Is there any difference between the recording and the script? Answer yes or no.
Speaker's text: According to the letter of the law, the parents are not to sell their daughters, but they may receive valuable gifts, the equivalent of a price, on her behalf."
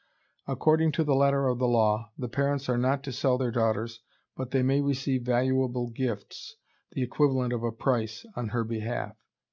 no